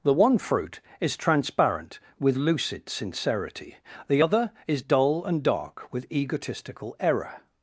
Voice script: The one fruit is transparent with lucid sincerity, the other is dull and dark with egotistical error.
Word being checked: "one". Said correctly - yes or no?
yes